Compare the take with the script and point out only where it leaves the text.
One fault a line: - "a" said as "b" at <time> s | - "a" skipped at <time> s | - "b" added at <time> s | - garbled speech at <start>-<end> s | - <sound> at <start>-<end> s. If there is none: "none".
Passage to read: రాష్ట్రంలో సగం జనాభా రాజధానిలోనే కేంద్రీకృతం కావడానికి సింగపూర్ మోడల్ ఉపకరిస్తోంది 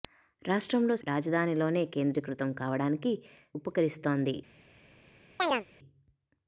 - "సగం జనాభా" skipped at 0.9 s
- "సింగపూర్ మోడల్" skipped at 3.1 s
- chirp at 5.4-5.6 s